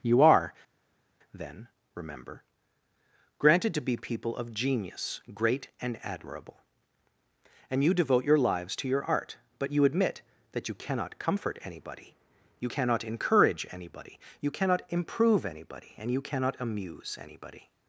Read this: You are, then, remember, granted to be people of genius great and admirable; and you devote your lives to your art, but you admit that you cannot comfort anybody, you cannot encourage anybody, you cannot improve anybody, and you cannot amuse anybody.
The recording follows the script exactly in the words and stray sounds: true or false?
true